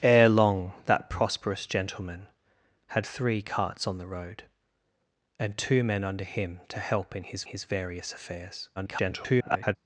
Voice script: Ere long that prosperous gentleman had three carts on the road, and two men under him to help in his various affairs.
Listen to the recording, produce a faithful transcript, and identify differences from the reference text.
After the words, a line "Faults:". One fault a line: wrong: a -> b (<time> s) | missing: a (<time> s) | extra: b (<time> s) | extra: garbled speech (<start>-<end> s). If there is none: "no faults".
Ere long that prosperous gentleman had three carts on the road, and two men under him to help in his his various affairs. [garbled]
Faults:
extra: his (7.5 s)
extra: garbled speech (8.8-9.8 s)